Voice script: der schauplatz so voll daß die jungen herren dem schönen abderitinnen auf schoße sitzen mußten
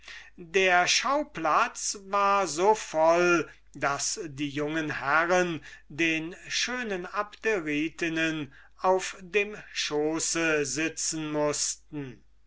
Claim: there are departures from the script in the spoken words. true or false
true